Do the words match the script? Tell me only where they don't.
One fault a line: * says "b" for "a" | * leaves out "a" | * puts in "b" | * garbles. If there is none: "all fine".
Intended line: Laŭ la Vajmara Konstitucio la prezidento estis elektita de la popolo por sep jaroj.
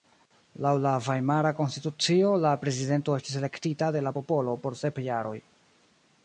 all fine